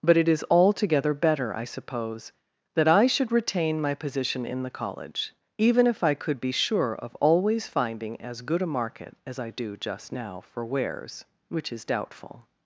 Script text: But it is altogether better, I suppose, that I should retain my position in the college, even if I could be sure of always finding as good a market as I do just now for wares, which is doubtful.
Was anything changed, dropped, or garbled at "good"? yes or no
no